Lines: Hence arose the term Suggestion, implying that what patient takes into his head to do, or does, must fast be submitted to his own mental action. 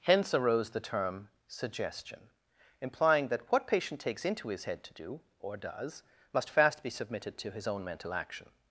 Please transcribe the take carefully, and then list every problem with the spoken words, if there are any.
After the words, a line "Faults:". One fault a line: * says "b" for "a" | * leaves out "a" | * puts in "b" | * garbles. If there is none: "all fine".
Hence arose the term Suggestion, implying that what patient takes into his head to do, or does, must fast be submitted to his own mental action.
Faults:
all fine